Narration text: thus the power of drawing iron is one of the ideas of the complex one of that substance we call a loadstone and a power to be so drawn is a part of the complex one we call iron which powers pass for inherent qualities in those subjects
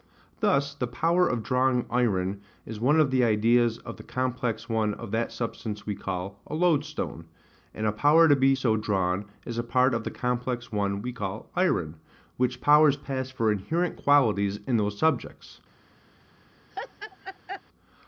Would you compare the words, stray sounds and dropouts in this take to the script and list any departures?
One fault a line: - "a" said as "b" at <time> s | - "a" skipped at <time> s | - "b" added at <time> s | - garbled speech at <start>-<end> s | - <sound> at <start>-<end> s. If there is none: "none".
- laugh at 16.7-17.6 s